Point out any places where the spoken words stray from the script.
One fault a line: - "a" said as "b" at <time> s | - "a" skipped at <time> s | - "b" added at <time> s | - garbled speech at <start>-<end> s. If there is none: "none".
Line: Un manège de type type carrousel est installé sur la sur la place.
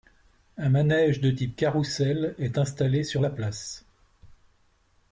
- "type" skipped at 1.6 s
- "sur la" skipped at 3.3 s